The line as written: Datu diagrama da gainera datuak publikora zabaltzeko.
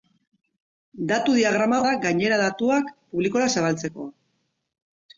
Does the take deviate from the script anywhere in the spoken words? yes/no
no